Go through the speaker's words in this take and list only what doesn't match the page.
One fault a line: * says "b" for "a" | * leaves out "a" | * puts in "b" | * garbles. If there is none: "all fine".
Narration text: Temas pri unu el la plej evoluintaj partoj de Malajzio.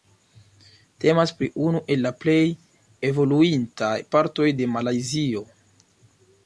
all fine